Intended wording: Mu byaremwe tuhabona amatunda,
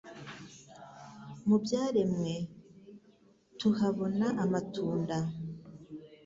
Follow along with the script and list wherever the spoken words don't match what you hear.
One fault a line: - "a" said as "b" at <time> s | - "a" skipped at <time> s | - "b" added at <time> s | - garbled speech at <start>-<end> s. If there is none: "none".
none